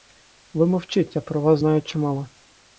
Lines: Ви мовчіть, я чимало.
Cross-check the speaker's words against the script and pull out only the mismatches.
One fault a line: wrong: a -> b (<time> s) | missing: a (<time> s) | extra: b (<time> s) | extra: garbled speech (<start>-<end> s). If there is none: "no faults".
extra: про вас знаю (1.2 s)